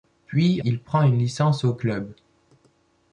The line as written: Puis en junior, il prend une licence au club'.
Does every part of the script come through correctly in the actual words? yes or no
no